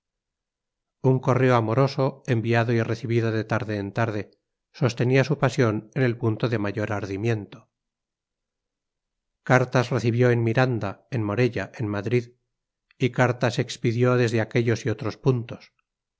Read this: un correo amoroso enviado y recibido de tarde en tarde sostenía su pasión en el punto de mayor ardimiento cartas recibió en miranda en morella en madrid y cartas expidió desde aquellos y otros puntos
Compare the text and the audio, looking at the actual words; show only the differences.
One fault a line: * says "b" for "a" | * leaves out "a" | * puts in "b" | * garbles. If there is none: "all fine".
all fine